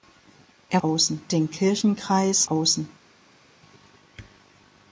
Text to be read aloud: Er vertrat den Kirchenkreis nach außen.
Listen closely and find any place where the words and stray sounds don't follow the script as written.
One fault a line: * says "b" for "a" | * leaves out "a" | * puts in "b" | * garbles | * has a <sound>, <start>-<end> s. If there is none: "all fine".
* says "außen" for "vertrat"
* leaves out "nach"